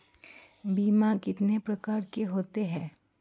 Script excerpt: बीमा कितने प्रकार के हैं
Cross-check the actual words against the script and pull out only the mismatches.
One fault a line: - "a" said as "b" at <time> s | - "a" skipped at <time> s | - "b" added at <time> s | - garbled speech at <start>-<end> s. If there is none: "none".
- "होते" added at 2.2 s